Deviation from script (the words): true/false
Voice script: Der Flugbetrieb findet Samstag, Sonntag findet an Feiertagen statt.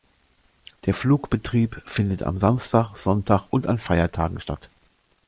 true